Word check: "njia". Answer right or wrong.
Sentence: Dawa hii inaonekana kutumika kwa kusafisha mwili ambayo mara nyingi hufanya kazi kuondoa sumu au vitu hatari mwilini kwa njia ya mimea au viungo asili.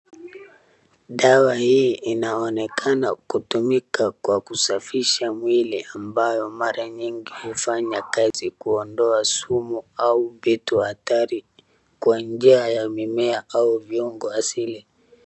right